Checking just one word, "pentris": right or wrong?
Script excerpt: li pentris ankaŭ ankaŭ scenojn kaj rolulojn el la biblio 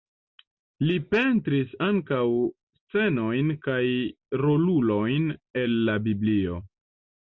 right